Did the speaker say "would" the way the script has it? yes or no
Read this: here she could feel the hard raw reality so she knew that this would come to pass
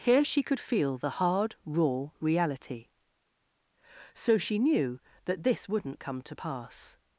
no